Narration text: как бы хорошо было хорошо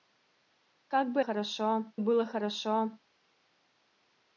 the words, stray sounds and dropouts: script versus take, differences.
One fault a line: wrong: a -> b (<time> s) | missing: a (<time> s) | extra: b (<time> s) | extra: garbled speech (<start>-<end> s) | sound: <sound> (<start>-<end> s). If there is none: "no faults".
no faults